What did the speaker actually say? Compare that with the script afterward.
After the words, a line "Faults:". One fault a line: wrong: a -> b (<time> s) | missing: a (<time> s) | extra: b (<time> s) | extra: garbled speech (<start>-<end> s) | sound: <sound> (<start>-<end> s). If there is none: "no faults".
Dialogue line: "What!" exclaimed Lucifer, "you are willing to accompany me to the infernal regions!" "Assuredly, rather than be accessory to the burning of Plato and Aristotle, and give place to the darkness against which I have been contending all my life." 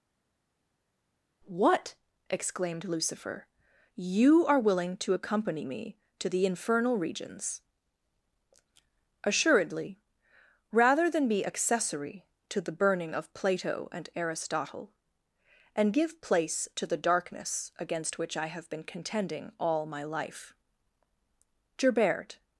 "What!" exclaimed Lucifer, "you are willing to accompany me to the infernal regions!" "Assuredly, rather than be accessory to the burning of Plato and Aristotle, and give place to the darkness against which I have been contending all my life." "Gerbert
Faults:
extra: Gerbert (21.8 s)